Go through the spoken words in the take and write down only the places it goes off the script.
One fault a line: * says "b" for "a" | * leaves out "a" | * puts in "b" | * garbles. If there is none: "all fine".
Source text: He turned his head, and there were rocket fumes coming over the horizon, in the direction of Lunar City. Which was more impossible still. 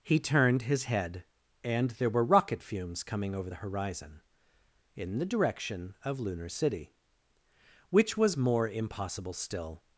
all fine